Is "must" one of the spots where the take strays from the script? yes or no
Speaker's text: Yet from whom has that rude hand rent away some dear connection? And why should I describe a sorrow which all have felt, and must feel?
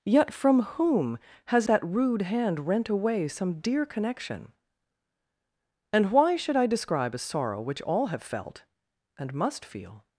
no